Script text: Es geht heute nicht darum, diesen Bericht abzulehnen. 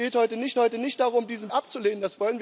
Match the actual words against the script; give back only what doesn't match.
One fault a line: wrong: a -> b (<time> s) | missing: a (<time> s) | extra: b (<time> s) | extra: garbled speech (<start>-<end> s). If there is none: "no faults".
extra: heute nicht (0.6 s)
missing: Bericht (1.5 s)